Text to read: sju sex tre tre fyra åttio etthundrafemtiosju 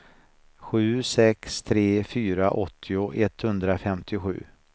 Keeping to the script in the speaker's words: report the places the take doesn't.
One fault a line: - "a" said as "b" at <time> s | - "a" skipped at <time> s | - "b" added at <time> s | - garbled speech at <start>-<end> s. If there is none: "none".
- "tre" skipped at 2.0 s